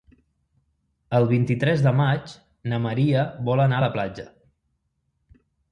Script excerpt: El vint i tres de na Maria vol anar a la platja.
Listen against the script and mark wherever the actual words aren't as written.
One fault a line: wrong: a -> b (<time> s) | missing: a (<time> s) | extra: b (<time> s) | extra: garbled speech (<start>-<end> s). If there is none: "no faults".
extra: maig (2.0 s)